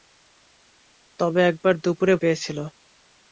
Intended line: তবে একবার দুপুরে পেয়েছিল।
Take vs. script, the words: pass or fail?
pass